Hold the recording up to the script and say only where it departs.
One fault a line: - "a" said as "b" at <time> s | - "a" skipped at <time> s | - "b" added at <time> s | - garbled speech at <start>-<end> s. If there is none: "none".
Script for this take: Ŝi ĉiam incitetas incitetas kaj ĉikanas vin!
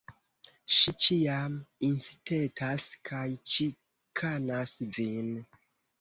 - "incitetas" skipped at 2.9 s